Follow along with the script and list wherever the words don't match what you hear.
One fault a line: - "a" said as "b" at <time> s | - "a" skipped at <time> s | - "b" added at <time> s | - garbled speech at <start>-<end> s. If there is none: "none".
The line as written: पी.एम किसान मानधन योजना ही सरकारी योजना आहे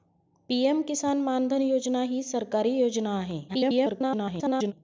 - garbled speech at 3.5-4.7 s